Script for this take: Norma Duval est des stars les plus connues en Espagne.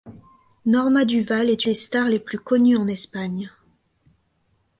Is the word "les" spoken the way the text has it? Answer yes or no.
yes